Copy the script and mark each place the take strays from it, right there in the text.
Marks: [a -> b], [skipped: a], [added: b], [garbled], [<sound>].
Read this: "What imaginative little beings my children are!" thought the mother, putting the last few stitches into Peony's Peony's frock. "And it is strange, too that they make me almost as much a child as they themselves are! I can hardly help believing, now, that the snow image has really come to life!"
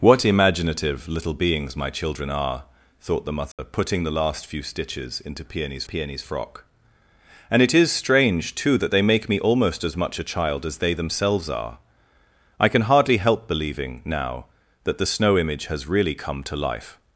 "What imaginative little beings my children are!" thought the mother, [dropout] putting the last few stitches into Peony's Peony's frock. "And it is strange, too that they make me almost as much a child as they themselves are! I can hardly help believing, now, that the snow image has really come to life!"